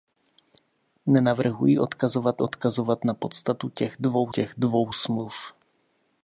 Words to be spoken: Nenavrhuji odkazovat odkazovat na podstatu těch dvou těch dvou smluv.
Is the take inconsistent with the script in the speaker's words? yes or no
no